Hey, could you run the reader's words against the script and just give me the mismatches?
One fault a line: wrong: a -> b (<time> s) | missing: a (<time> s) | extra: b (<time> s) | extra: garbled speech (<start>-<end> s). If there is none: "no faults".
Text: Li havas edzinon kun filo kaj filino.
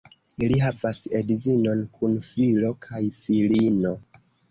no faults